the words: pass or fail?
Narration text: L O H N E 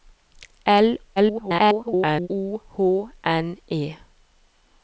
fail